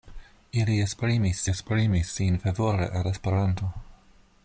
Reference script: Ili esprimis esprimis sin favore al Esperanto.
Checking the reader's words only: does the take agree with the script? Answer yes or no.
yes